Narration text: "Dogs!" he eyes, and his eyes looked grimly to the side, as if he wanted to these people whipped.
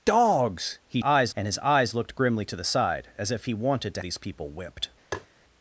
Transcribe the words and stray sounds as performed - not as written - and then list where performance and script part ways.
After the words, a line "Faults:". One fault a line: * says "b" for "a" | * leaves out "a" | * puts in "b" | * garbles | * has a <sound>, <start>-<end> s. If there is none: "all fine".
"Dogs!" he eyes, and his eyes looked grimly to the side, as if he wanted to these people whipped.
Faults:
* has a tap, 5.1-5.3 s